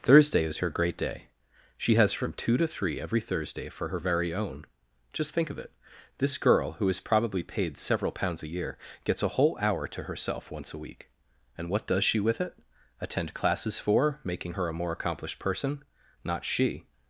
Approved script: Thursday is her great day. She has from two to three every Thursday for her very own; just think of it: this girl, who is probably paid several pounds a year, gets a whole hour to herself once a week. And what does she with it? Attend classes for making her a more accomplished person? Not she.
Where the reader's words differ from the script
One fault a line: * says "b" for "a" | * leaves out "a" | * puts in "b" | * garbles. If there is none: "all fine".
all fine